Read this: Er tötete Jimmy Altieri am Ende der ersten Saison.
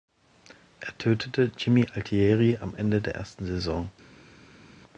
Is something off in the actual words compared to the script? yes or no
no